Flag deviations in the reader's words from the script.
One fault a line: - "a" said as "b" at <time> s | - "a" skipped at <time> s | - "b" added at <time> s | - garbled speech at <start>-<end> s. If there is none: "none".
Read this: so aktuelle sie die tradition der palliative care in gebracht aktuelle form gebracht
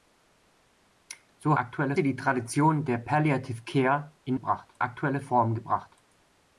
none